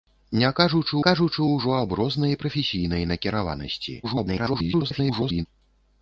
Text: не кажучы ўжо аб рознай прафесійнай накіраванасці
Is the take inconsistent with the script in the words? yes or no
yes